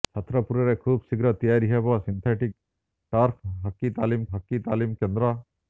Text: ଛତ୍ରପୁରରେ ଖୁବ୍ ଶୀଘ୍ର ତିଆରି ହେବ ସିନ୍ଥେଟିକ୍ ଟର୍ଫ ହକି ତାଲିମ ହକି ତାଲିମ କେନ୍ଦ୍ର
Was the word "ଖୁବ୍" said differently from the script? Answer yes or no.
no